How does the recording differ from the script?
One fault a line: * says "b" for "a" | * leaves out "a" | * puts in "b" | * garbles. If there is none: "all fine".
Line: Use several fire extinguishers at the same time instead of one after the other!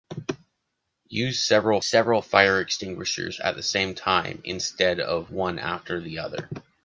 * puts in "several"